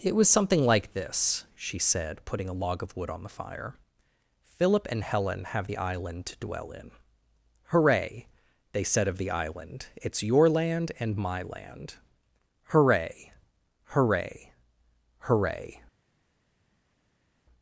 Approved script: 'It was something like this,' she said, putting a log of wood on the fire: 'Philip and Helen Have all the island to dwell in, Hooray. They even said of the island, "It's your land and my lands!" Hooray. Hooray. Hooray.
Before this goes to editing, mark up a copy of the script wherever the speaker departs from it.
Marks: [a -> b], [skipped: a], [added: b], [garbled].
'It was something like this,' she said, putting a log of wood on the fire: 'Philip and Helen Have [skipped: all] the island to dwell in, Hooray. They [skipped: even] said of the island, "It's your land and my [lands!" -> land] Hooray. Hooray. Hooray.